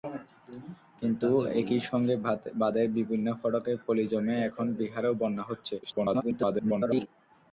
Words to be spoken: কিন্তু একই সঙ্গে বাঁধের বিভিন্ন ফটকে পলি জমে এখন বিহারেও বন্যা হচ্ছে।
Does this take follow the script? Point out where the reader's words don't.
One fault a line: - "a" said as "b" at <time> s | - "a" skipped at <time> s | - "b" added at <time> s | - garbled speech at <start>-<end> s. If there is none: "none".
- garbled speech at 5.8-7.1 s